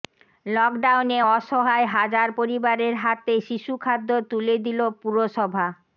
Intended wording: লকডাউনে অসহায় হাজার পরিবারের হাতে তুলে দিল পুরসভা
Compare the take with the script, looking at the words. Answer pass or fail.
fail